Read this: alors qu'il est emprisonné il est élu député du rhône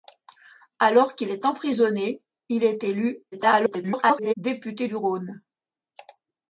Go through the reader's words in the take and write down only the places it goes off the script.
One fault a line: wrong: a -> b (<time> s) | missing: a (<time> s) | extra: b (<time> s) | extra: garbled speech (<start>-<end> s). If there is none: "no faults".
extra: garbled speech (3.3-4.3 s)